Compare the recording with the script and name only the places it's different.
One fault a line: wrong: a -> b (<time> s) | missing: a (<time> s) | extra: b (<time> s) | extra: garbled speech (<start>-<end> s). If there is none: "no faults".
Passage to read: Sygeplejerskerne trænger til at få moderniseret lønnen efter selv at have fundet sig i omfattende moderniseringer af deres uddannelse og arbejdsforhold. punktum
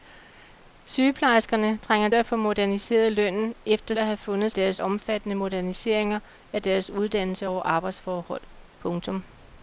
missing: til (2.1 s)
missing: selv (3.9 s)
wrong: sig -> deres (4.5 s)